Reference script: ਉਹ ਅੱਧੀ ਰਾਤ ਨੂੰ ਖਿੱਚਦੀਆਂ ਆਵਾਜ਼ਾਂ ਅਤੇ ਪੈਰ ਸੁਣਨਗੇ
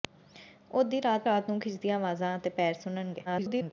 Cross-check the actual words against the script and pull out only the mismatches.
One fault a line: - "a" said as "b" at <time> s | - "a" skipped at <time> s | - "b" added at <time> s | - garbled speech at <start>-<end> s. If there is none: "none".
- "ਰਾਤ" added at 1.2 s
- garbled speech at 3.2-3.7 s